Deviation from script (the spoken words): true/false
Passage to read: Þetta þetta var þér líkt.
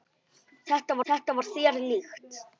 false